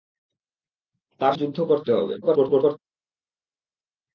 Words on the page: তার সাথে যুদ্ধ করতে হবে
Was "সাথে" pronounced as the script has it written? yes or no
no